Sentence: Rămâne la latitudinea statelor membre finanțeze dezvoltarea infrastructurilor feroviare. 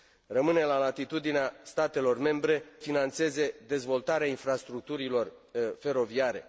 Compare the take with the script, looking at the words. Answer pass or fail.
pass